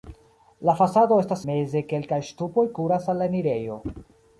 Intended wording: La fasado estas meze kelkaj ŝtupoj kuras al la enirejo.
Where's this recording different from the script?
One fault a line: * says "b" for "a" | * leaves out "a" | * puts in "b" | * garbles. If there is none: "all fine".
all fine